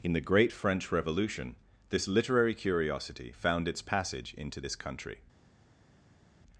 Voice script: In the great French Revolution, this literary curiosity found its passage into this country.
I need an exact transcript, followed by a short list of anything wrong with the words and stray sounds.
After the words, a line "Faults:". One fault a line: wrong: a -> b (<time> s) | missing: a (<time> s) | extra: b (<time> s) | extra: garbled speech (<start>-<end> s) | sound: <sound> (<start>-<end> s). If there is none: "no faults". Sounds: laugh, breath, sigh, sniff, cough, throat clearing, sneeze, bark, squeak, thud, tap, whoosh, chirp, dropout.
In the great French Revolution, this literary curiosity found its passage into this country.
Faults:
no faults